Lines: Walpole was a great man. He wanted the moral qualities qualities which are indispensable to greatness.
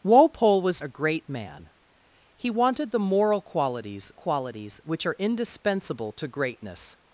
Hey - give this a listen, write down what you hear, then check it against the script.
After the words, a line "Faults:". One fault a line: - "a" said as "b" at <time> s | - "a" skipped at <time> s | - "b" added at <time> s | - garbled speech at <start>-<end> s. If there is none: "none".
Walpole was a great man. He wanted the moral qualities qualities which are indispensable to greatness.
Faults:
none